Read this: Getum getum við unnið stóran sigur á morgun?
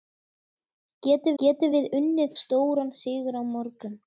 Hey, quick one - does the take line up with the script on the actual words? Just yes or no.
yes